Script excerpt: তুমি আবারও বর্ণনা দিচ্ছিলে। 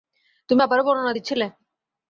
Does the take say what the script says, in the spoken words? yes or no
yes